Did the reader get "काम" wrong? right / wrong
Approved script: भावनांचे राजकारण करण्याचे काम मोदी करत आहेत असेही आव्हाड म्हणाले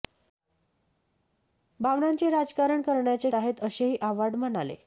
wrong